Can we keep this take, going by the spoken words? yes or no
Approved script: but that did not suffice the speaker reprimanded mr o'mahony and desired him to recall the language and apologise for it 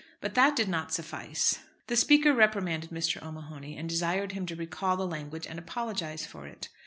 yes